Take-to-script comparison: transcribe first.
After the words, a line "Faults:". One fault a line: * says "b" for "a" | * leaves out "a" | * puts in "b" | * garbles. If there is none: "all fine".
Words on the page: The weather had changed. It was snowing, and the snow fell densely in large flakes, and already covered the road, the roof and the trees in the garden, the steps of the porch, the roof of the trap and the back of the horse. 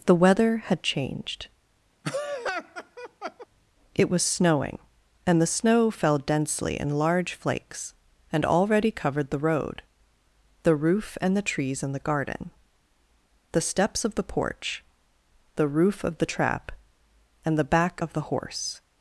The weather had changed. It was snowing, and the snow fell densely in large flakes, and already covered the road, the roof and the trees in the garden, the steps of the porch, the roof of the trap and the back of the horse.
Faults:
all fine